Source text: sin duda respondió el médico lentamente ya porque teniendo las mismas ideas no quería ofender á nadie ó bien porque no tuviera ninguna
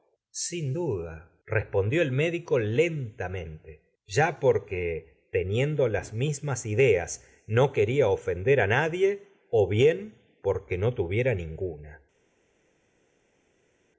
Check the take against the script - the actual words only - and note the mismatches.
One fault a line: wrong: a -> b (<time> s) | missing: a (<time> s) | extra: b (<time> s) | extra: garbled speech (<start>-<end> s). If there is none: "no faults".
no faults